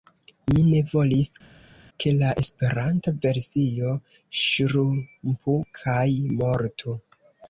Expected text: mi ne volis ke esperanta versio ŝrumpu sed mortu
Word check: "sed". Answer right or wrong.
wrong